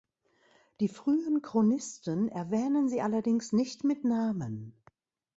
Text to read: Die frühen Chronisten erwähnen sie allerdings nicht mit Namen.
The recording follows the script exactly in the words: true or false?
true